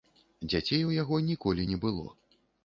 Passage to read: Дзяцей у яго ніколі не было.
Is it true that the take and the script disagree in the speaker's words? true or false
false